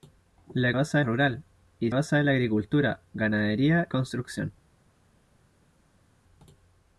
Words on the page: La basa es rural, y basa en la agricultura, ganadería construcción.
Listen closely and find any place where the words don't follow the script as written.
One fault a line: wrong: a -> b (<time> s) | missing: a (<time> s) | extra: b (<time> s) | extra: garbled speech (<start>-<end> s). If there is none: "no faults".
no faults